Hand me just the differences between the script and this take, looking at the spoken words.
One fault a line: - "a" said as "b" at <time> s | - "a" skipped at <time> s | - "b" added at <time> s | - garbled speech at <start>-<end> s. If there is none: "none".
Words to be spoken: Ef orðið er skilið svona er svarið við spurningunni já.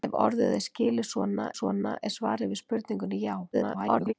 - "svona" added at 1.6 s
- garbled speech at 3.5-4.1 s